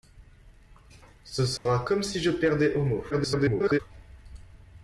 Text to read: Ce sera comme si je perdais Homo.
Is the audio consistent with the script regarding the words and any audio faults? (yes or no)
no